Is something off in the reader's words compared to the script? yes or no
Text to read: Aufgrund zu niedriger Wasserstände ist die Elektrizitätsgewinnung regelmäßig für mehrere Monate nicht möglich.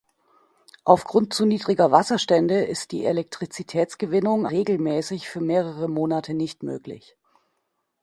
no